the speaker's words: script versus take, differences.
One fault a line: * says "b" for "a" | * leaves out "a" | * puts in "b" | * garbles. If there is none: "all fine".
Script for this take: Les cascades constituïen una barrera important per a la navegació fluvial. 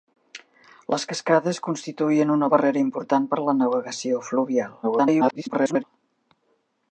* garbles